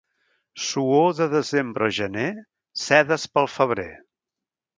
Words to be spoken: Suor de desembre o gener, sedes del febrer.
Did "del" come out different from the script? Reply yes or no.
yes